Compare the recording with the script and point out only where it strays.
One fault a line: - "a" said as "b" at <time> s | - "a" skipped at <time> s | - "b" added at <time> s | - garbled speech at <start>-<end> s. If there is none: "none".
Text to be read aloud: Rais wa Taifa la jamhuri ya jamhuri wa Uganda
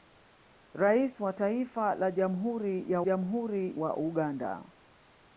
none